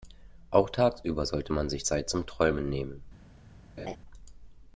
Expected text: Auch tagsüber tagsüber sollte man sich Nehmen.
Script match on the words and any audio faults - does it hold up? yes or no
no